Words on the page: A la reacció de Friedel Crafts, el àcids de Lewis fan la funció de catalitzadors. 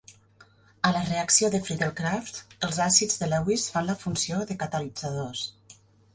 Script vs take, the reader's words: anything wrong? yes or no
yes